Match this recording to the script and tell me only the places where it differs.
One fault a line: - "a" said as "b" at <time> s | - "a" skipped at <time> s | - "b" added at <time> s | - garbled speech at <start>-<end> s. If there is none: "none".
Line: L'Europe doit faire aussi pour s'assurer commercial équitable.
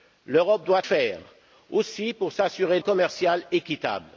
none